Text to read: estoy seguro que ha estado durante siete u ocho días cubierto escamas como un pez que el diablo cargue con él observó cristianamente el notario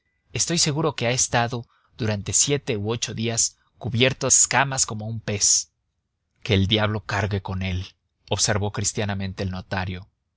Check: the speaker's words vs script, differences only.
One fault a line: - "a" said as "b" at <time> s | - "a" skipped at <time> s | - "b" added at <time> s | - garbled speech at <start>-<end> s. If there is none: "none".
none